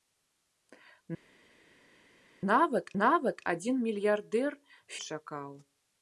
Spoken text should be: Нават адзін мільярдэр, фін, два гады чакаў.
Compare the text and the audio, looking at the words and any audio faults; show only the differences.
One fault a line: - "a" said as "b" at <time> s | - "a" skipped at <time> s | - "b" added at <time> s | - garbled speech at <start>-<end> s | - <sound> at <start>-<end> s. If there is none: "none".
- "нават" added at 3.0 s
- "фін два гады" skipped at 4.5 s